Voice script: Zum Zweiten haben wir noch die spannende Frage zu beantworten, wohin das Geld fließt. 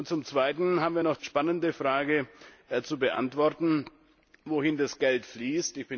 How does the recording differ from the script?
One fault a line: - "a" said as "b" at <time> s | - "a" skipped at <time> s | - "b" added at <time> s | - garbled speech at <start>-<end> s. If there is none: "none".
- "die" skipped at 1.2 s